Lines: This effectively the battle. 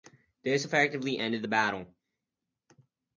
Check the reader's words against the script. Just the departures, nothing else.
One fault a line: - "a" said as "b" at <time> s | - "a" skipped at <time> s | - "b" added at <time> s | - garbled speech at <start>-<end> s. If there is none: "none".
- "ended" added at 1.2 s